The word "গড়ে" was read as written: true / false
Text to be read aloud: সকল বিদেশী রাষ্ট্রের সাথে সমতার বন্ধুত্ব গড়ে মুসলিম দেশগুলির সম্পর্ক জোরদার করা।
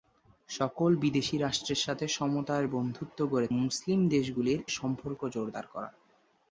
true